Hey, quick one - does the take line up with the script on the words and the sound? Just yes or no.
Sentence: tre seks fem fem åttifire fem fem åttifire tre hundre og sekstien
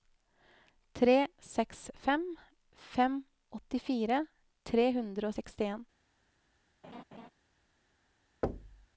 no